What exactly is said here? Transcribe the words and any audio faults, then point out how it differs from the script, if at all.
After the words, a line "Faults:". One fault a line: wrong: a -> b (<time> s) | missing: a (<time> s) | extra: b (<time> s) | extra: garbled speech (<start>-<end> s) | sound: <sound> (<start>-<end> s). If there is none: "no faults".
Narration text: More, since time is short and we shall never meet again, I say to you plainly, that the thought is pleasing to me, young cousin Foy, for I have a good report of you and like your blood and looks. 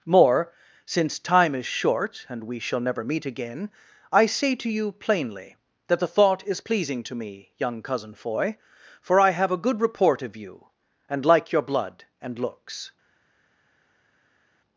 More, since time is short and we shall never meet again, I say to you plainly, that the thought is pleasing to me, young cousin Foy, for I have a good report of you and like your blood and looks.
Faults:
no faults